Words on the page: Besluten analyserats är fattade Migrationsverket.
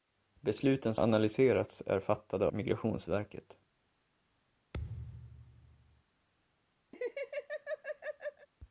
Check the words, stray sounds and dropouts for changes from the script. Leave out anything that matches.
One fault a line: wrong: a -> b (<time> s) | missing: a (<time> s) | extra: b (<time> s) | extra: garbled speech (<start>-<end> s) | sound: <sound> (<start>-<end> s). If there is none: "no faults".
sound: thud (4.7-6.0 s)
sound: laugh (6.9-8.5 s)